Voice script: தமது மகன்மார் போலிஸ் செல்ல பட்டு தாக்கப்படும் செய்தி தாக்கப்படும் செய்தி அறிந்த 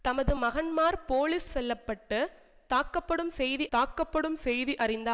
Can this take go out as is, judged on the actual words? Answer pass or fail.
pass